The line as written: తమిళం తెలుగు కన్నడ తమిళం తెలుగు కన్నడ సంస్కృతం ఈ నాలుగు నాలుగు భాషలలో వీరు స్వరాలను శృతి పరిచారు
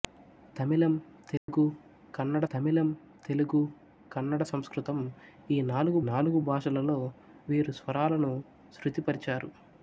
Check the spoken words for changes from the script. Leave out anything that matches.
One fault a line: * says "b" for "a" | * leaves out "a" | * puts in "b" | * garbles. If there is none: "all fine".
all fine